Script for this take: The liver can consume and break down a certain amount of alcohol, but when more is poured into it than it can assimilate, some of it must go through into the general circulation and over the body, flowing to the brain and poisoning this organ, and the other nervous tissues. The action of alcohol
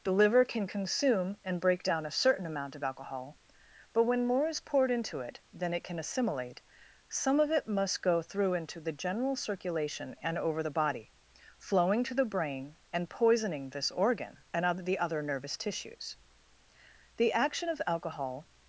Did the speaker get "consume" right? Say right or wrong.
right